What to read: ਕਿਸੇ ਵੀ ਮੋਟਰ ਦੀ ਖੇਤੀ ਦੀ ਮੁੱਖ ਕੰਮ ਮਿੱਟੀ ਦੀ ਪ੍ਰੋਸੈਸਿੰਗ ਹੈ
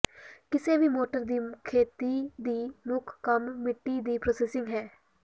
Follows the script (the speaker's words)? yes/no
yes